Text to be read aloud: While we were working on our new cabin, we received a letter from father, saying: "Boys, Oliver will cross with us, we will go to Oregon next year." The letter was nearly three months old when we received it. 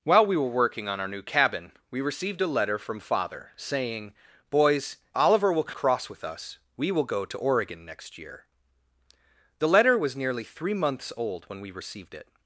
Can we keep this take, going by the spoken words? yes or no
yes